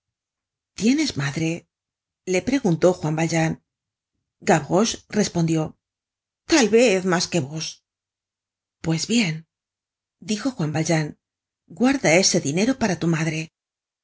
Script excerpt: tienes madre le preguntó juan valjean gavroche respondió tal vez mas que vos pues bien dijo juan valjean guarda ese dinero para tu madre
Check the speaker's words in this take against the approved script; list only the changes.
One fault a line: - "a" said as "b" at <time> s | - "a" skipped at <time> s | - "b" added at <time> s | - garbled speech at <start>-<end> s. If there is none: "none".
none